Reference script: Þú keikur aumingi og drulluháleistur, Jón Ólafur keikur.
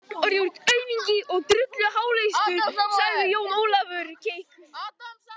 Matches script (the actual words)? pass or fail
fail